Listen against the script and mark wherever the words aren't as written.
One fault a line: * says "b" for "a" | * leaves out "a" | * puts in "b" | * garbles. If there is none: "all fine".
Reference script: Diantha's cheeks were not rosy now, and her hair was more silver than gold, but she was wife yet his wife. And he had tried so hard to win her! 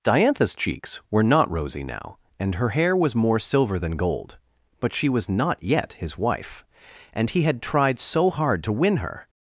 * says "not" for "wife"